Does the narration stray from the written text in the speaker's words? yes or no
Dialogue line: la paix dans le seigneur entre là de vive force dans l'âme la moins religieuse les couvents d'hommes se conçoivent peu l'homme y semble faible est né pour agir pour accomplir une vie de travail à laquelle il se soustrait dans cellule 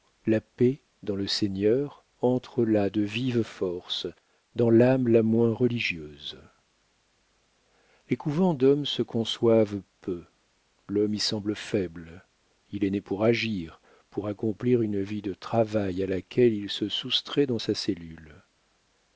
yes